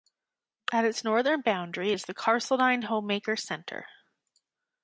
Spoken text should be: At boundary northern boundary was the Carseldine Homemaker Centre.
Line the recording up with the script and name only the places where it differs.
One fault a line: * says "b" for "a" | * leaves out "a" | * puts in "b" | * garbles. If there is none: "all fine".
* says "its" for "boundary"
* says "is" for "was"